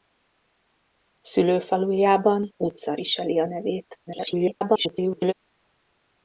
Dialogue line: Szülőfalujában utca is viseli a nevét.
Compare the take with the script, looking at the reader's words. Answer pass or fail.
fail